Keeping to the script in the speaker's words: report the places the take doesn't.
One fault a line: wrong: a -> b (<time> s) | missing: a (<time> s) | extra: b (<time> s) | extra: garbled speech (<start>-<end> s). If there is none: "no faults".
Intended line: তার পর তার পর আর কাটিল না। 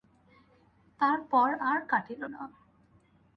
missing: তার পর (1.5 s)